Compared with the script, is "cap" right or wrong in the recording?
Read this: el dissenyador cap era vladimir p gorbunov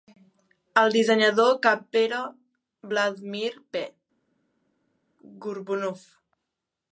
right